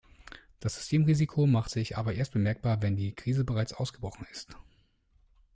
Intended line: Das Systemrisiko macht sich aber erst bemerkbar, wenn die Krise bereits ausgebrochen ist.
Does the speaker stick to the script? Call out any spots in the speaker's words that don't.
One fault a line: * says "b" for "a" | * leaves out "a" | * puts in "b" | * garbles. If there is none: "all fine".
all fine